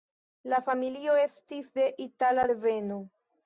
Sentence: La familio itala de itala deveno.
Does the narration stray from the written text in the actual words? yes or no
yes